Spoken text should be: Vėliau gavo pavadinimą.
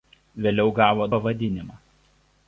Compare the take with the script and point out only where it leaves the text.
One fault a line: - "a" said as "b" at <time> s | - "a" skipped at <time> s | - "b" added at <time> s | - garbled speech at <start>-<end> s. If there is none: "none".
none